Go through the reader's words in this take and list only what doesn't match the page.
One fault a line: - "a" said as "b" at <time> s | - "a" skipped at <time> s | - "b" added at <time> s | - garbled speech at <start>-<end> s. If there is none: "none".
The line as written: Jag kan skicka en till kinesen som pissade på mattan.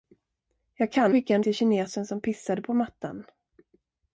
none